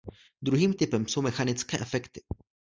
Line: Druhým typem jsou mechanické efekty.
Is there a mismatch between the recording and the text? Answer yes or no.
no